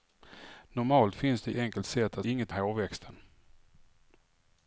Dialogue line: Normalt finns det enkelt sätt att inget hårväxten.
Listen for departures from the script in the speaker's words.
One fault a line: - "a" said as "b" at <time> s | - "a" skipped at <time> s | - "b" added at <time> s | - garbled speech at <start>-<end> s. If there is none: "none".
none